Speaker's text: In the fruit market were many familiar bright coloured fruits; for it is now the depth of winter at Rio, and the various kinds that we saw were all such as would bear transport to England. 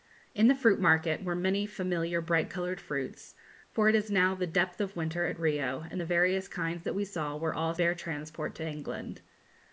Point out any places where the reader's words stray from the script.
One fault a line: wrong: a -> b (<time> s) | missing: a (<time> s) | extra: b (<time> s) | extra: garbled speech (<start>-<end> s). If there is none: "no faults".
missing: such as would (7.7 s)